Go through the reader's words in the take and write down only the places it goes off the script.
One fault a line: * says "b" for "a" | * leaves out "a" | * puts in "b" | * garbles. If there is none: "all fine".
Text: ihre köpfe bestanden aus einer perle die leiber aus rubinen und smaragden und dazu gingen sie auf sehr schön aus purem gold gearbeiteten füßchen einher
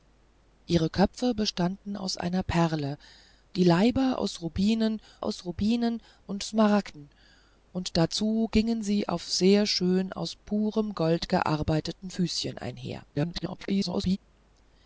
* puts in "aus rubinen"
* garbles